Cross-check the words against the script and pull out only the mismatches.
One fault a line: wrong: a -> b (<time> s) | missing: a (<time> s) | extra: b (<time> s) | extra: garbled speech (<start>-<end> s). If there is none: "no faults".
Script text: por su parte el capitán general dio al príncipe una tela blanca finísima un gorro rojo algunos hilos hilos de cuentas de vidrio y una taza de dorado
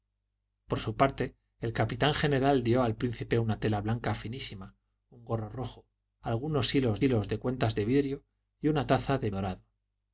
no faults